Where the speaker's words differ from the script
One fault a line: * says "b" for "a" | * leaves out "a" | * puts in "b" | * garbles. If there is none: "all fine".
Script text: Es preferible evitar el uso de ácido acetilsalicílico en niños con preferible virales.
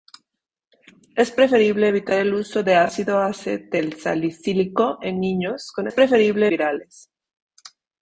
all fine